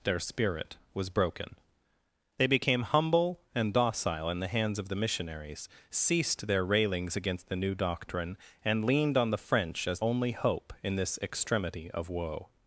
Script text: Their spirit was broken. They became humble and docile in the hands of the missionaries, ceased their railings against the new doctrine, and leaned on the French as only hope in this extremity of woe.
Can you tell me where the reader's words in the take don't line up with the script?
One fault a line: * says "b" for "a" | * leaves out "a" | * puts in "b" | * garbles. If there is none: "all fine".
all fine